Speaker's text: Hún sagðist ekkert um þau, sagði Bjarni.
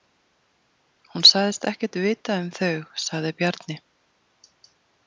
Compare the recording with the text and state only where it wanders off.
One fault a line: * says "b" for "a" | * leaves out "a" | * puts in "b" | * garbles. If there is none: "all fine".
* puts in "vita"